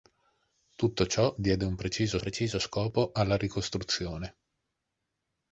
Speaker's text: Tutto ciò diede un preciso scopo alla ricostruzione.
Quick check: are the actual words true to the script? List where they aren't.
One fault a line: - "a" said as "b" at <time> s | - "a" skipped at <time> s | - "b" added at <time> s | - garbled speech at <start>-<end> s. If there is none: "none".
- "preciso" added at 2.2 s